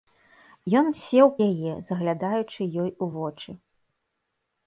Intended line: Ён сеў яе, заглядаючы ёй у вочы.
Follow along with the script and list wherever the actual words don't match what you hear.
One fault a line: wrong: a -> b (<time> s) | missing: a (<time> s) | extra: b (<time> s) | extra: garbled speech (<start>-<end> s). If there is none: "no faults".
no faults